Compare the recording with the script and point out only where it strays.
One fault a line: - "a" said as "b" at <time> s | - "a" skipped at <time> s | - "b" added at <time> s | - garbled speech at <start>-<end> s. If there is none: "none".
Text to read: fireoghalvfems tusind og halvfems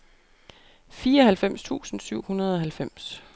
- "syv hundrede" added at 2.0 s